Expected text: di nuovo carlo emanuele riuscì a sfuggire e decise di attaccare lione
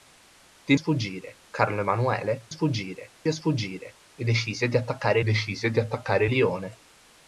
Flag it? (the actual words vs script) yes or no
yes